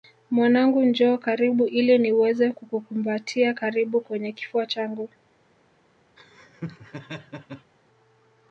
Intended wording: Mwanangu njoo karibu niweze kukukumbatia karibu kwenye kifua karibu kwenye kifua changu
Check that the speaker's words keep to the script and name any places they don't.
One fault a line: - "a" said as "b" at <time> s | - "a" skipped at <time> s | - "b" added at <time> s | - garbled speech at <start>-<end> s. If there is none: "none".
- "ili" added at 1.6 s
- "karibu kwenye kifua" skipped at 4.7 s